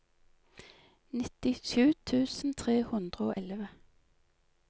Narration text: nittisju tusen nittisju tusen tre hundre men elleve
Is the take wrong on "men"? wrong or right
wrong